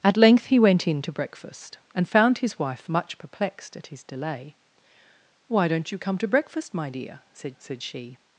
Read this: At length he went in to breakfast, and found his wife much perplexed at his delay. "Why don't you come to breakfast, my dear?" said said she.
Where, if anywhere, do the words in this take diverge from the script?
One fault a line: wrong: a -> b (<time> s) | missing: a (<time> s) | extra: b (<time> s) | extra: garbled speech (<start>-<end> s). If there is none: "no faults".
no faults